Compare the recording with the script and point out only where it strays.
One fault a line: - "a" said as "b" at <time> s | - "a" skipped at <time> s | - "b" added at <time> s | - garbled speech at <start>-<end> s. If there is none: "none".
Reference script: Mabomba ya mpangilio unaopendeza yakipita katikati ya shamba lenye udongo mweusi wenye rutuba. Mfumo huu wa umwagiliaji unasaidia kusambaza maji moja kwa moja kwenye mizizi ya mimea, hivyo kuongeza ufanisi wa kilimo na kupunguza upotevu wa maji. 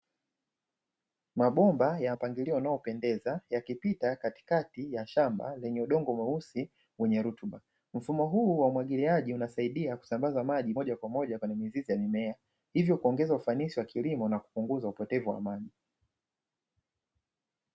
none